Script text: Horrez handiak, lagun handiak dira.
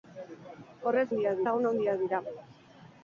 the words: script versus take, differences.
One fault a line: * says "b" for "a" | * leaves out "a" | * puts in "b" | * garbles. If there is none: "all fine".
all fine